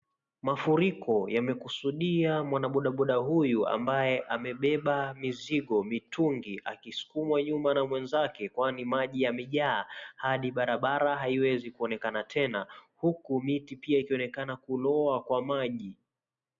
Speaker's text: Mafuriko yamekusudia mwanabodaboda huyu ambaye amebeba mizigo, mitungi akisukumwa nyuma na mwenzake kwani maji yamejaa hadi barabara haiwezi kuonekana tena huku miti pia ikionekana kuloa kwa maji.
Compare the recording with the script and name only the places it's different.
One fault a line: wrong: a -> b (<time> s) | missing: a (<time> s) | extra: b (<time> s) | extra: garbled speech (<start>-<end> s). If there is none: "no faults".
no faults